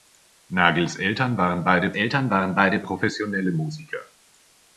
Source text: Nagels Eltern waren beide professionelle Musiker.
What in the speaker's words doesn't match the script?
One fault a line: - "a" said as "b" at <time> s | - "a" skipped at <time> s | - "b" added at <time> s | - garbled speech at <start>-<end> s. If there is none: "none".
- "Eltern waren beide" added at 1.9 s